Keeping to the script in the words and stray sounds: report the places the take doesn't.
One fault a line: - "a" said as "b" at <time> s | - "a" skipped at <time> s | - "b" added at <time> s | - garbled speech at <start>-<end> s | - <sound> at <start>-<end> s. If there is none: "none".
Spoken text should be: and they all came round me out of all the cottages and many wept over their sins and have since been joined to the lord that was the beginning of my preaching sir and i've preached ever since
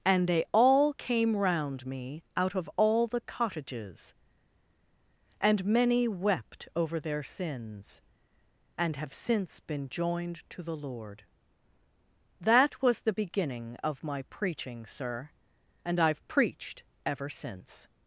none